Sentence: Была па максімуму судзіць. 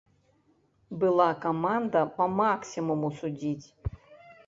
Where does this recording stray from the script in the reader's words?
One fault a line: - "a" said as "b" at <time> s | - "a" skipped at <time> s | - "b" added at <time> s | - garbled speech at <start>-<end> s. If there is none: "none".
- "каманда" added at 1.4 s